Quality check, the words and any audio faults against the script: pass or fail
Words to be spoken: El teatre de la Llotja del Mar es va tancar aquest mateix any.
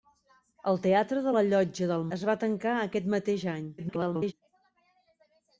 fail